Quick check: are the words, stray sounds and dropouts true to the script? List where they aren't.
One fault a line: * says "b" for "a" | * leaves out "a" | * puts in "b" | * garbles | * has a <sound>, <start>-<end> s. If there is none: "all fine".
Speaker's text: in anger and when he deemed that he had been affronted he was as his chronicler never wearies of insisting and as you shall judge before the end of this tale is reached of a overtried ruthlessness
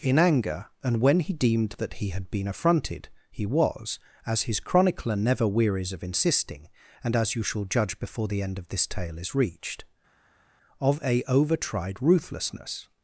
all fine